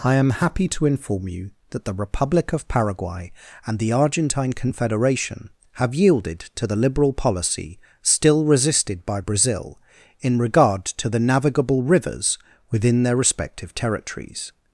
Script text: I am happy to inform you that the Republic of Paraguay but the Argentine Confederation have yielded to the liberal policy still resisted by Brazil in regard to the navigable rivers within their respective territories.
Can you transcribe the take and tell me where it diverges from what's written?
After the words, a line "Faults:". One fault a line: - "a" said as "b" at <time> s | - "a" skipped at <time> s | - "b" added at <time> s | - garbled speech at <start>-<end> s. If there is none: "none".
I am happy to inform you that the Republic of Paraguay and the Argentine Confederation have yielded to the liberal policy still resisted by Brazil in regard to the navigable rivers within their respective territories.
Faults:
- "but" said as "and" at 3.7 s